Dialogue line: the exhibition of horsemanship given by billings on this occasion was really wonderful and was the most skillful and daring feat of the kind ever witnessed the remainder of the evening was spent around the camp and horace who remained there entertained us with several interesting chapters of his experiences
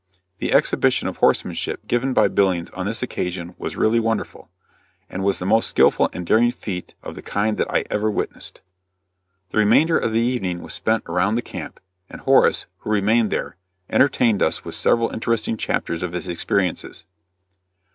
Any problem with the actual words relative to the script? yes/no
yes